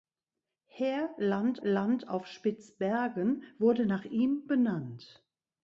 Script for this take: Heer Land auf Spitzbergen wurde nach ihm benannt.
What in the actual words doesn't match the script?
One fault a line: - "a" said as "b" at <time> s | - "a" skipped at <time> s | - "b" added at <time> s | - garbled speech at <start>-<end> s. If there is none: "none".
- "Land" added at 1.6 s